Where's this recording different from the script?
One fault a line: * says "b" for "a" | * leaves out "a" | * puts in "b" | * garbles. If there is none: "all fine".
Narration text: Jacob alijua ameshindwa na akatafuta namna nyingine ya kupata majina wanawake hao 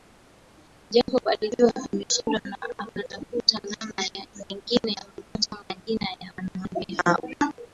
* puts in "ya"